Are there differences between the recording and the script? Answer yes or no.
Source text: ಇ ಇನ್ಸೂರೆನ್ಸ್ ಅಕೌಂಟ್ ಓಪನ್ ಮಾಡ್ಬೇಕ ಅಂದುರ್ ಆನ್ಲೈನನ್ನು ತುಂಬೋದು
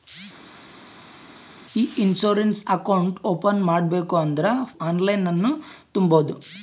no